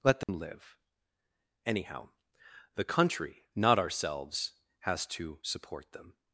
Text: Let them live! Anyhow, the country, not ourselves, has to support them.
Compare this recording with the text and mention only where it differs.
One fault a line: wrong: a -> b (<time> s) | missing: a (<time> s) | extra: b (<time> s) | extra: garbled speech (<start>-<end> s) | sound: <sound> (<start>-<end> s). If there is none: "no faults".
sound: dropout (0.2-0.3 s)